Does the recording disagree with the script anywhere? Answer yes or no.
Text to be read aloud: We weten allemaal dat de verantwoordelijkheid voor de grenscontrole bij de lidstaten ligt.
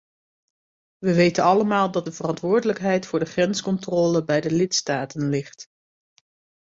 no